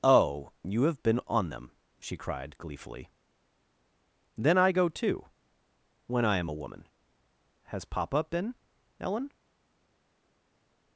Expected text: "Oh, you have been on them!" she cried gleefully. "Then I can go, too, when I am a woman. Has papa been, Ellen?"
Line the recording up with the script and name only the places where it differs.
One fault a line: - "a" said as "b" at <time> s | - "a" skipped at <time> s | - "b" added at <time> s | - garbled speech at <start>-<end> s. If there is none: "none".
- "can" skipped at 4.7 s